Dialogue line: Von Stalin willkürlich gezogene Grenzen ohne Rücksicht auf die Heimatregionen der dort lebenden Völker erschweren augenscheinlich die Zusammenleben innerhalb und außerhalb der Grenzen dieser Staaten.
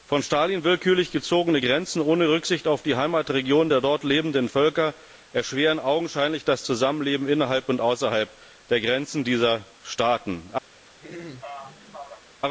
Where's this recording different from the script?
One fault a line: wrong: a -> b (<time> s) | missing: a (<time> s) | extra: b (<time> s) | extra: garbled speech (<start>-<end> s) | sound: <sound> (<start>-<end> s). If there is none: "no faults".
wrong: die -> das (6.4 s)
sound: throat clearing (11.0-12.3 s)